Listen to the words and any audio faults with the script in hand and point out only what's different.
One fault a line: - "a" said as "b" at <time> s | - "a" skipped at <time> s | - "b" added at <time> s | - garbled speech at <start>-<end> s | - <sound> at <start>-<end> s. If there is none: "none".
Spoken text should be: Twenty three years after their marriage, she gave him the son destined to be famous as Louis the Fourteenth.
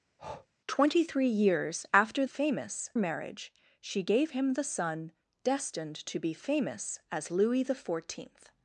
- breath at 0.2-0.5 s
- "their" said as "famous" at 2.2 s